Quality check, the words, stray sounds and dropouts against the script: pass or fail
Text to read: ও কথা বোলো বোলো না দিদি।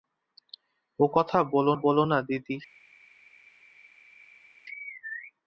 pass